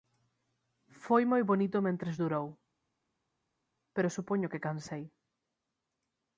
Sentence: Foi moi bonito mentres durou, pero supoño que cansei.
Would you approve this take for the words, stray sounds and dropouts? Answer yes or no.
yes